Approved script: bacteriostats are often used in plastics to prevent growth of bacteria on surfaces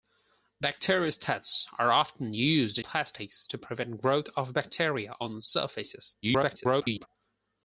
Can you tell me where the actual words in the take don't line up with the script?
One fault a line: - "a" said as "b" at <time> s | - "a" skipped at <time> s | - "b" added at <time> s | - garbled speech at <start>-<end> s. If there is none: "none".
- "in" skipped at 2.8 s
- garbled speech at 6.2-7.1 s